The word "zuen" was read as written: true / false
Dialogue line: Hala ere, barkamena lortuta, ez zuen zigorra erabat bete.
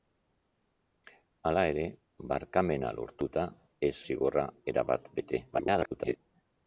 false